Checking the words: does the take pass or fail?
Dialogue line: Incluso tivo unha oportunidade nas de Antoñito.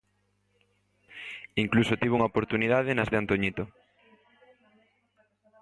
pass